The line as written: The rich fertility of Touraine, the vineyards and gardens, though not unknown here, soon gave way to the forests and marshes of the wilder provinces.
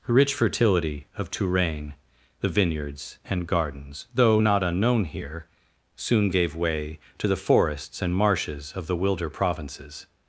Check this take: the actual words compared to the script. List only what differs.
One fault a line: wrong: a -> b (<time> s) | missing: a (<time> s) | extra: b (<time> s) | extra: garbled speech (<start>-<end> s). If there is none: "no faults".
no faults